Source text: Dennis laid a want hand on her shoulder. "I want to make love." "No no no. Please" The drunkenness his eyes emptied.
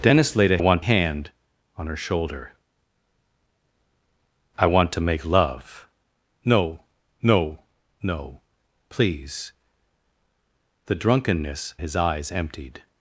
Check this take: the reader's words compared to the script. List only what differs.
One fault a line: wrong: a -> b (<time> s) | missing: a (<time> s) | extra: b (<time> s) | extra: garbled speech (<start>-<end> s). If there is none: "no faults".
no faults